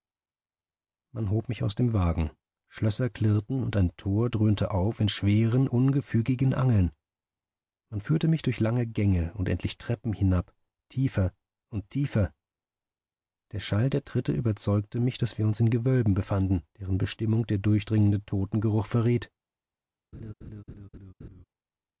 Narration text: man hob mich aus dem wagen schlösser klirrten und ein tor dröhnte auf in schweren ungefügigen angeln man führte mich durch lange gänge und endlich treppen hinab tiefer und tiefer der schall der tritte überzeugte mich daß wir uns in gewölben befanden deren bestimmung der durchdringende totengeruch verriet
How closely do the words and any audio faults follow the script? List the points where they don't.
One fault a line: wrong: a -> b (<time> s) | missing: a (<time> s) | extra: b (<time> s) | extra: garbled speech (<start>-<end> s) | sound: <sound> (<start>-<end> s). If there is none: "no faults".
sound: laugh (20.1-21.4 s)